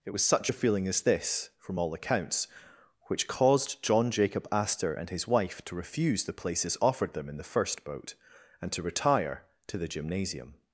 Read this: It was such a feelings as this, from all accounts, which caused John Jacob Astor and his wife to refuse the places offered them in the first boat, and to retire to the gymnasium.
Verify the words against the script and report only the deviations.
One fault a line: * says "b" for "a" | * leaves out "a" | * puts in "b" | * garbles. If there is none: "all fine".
* says "feeling" for "feelings"